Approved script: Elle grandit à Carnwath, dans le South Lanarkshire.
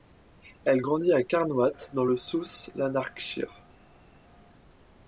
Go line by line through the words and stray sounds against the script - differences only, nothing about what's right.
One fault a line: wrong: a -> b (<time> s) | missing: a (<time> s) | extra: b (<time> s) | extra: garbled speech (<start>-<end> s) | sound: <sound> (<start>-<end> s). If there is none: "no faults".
no faults